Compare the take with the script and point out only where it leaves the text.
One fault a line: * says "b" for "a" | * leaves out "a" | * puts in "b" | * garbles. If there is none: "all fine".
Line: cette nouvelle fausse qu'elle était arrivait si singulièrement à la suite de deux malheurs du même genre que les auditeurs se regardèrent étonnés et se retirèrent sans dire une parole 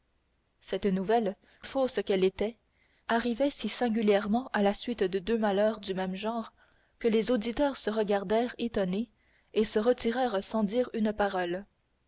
all fine